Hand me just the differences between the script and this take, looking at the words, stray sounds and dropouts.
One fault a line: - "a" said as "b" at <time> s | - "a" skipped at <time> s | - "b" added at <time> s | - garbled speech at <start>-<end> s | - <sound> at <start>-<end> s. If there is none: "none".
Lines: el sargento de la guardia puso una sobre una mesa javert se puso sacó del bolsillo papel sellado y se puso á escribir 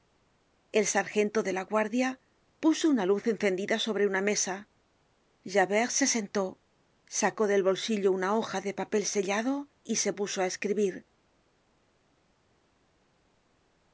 - "luz encendida" added at 3.0 s
- "puso" said as "sentó" at 6.1 s
- "una hoja de" added at 8.1 s